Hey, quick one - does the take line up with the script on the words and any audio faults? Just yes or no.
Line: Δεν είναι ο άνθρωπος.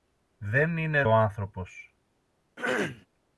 no